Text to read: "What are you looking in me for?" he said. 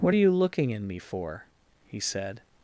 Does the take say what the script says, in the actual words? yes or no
yes